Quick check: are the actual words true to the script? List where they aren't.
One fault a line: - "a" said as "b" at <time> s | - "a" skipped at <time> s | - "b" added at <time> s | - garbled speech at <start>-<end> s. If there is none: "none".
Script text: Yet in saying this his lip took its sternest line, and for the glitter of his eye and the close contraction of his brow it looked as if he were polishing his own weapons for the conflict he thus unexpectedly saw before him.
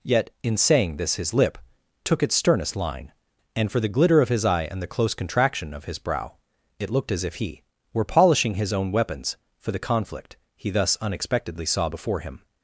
none